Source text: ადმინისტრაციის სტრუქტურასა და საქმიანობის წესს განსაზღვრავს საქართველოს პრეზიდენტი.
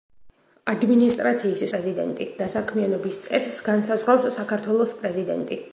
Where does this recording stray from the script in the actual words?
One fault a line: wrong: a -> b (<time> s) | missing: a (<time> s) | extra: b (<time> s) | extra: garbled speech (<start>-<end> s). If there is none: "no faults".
wrong: სტრუქტურასა -> პრეზიდენტი (1.7 s)